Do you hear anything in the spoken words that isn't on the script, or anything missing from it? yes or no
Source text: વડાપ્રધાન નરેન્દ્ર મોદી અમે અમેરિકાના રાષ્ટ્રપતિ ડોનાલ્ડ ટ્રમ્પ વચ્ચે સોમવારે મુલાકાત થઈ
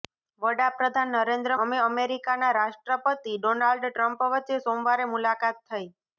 yes